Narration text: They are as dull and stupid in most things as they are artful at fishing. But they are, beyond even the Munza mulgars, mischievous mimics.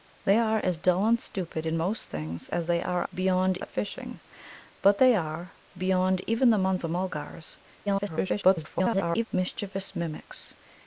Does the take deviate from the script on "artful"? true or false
true